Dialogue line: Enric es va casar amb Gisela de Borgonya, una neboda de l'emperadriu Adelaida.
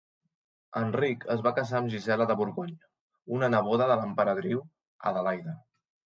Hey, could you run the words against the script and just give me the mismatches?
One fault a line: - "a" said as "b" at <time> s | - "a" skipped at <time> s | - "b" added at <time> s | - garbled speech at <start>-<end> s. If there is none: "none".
none